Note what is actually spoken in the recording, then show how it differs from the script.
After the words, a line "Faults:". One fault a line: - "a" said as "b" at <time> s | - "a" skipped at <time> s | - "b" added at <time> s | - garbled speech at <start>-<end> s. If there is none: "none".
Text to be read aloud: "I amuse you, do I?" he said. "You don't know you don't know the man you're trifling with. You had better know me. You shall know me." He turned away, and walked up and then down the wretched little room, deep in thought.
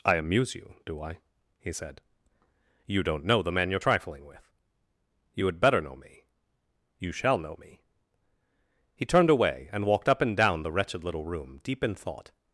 "I amuse you, do I?" he said. "You don't know the man you're trifling with. You had better know me. You shall know me." He turned away, and walked up and down the wretched little room, deep in thought.
Faults:
- "you don't know" skipped at 3.4 s
- "then" skipped at 10.4 s